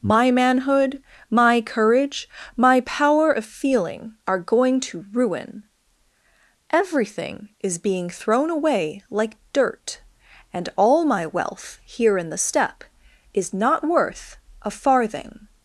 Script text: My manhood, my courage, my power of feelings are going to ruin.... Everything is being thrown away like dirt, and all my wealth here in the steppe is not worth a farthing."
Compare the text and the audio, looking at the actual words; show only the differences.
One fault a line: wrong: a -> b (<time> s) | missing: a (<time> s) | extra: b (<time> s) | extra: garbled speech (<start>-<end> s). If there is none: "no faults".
wrong: feelings -> feeling (3.5 s)